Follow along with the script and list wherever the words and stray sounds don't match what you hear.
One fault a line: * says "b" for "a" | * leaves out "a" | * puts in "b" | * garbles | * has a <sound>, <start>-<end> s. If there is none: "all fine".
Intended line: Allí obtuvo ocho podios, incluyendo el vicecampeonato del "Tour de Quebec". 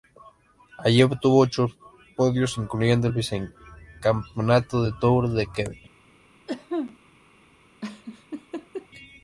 * has a cough, 6.5-7.0 s
* has a laugh, 7.8-8.9 s